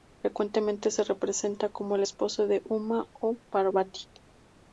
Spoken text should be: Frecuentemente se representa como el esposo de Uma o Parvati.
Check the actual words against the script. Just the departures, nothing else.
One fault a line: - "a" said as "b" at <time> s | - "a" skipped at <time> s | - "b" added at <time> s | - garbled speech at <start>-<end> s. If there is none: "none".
none